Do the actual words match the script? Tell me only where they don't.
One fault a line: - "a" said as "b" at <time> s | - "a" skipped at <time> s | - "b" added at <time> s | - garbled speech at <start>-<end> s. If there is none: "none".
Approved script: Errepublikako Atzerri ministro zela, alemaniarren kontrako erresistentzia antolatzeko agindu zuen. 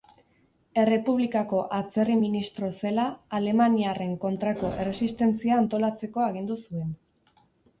none